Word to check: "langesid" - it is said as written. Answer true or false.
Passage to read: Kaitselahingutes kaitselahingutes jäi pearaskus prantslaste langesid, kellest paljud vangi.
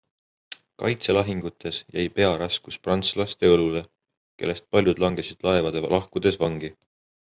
false